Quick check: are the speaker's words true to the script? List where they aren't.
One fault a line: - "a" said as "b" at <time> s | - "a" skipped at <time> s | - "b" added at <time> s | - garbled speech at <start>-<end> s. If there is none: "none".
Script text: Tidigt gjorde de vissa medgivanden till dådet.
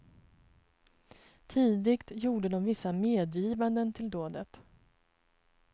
none